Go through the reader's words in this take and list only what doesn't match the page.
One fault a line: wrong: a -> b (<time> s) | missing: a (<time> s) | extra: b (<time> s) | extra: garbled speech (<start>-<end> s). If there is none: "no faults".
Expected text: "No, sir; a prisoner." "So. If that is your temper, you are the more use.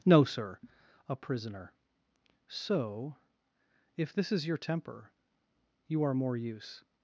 wrong: that -> this (4.1 s)
missing: the (6.1 s)